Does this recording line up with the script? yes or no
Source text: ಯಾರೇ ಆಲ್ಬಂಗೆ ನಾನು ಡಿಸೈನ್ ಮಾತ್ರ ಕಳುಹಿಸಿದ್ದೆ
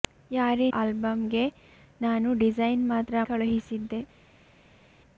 yes